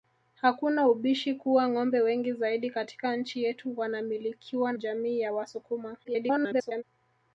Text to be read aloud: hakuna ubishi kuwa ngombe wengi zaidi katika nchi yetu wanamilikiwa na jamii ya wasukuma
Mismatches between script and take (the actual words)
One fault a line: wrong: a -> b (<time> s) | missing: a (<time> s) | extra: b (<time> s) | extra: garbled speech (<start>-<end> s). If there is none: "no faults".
missing: na (4.7 s)
extra: garbled speech (6.0-6.8 s)